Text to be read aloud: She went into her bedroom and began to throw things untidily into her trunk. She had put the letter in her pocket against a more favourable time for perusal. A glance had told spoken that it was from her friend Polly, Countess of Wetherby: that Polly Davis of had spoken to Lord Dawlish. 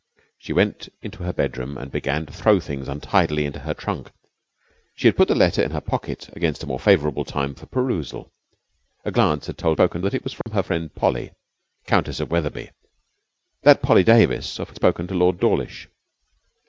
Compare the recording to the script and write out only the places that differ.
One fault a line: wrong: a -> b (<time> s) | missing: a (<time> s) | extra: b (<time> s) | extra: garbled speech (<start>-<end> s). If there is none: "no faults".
no faults